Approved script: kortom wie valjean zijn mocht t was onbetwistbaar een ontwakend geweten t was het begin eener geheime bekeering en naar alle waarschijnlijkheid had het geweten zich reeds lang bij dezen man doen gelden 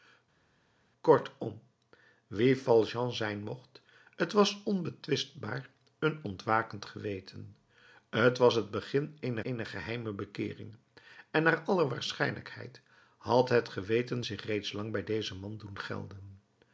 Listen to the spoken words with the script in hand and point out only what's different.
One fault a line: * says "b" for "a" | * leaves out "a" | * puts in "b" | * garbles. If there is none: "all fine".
* puts in "eener"